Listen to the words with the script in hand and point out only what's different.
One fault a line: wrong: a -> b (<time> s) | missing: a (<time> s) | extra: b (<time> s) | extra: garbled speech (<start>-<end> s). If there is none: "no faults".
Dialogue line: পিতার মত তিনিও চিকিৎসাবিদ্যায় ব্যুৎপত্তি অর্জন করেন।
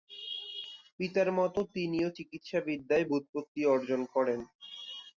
no faults